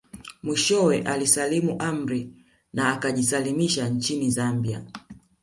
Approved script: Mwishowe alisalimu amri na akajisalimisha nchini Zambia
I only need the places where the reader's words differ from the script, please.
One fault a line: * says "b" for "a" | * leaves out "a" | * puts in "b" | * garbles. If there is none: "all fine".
all fine